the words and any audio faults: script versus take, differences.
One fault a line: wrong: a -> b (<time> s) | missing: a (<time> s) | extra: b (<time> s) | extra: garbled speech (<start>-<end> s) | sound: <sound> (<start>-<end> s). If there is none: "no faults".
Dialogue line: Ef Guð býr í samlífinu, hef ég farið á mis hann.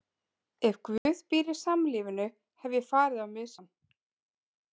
sound: dropout (1.0-1.1 s)